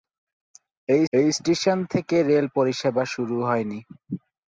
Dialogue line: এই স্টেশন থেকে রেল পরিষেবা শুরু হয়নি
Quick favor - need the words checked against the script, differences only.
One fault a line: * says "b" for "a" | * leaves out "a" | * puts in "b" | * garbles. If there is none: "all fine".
* puts in "এই"